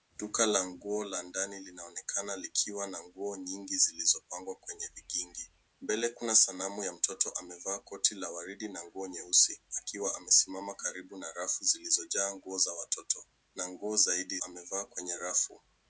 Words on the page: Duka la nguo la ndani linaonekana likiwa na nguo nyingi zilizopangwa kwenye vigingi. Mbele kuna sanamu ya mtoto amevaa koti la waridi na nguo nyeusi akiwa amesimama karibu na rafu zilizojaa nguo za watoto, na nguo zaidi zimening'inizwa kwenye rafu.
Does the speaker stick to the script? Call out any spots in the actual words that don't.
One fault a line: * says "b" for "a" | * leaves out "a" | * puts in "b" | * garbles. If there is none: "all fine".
* says "amevaa" for "zimening'inizwa"